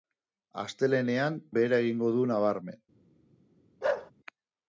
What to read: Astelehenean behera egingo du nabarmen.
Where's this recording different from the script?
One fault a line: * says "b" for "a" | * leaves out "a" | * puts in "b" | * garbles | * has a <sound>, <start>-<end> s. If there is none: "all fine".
* has a bark, 3.8-4.1 s